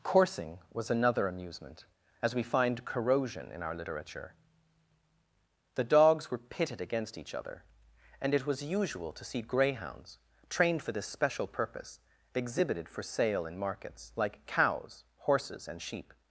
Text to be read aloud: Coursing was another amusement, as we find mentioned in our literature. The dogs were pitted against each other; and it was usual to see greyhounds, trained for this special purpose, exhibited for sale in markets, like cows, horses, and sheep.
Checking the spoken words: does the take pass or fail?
fail